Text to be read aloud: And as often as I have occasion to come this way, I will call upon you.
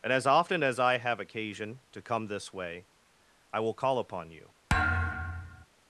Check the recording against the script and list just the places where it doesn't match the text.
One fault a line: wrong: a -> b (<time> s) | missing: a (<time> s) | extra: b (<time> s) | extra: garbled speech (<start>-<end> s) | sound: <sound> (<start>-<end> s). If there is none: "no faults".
sound: thud (4.7-5.7 s)